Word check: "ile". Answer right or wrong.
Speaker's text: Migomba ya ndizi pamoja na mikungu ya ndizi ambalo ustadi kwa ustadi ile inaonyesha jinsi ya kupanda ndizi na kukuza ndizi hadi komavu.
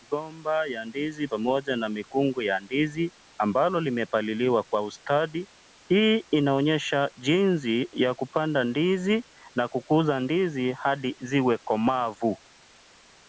wrong